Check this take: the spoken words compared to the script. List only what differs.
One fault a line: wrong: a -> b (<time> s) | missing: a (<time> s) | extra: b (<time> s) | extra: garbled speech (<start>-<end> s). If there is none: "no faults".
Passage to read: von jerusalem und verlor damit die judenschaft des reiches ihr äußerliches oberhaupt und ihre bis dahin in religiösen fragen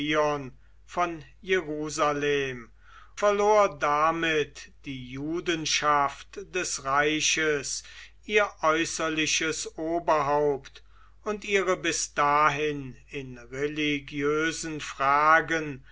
missing: und (2.7 s)